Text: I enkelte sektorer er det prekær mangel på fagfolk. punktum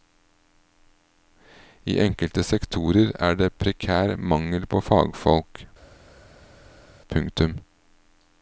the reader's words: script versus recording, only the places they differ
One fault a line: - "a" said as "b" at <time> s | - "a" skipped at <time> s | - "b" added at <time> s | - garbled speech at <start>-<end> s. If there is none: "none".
none